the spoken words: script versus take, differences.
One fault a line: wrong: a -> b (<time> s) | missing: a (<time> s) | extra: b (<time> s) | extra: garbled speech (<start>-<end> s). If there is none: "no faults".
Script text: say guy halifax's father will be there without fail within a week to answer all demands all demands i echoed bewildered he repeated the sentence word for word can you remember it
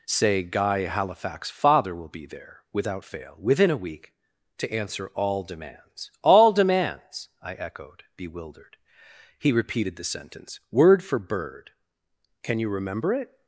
wrong: word -> bird (11.2 s)